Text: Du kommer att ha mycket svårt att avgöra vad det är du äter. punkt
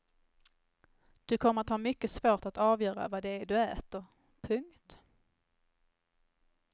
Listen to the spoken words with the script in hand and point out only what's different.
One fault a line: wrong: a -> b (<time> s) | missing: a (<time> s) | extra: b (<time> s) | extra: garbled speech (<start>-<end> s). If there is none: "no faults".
no faults